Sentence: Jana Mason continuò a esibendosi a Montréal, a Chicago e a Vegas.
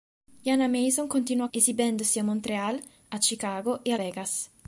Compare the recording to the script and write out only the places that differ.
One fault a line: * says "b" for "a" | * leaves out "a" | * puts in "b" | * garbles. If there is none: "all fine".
all fine